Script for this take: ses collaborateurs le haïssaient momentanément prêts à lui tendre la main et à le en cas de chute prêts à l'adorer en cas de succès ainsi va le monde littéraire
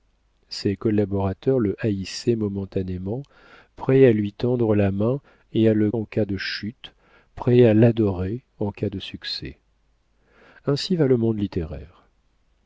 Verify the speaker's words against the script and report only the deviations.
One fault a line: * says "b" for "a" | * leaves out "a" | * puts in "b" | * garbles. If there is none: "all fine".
all fine